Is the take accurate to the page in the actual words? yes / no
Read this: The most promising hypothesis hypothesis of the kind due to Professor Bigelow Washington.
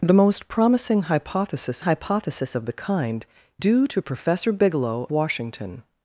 yes